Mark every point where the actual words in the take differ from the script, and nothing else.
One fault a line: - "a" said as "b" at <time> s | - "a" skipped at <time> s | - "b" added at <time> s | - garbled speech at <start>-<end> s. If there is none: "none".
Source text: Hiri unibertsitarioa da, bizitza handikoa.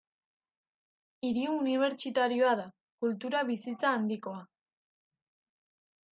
- "kultura" added at 3.0 s